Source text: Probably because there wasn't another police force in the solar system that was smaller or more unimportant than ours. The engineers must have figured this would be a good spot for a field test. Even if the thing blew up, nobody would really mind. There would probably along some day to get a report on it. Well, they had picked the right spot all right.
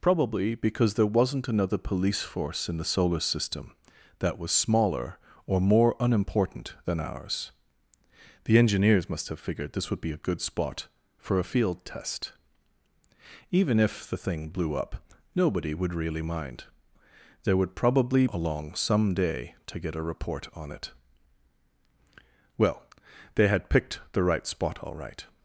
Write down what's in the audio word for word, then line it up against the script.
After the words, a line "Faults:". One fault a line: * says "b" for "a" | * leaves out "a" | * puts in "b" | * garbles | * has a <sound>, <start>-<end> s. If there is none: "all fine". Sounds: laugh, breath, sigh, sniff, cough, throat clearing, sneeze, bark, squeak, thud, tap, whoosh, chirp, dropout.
Probably because there wasn't another police force in the solar system that was smaller or more unimportant than ours. The engineers must have figured this would be a good spot for a field test. Even if the thing blew up, nobody would really mind. There would probably along some day to get a report on it. Well, they had picked the right spot all right.
Faults:
all fine